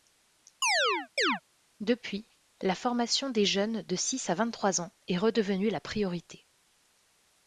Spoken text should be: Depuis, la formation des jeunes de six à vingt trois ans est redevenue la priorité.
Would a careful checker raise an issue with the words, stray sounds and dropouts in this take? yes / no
yes